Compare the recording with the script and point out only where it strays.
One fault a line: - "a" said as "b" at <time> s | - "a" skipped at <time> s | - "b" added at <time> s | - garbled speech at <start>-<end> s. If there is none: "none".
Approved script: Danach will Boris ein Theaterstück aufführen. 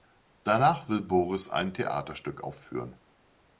none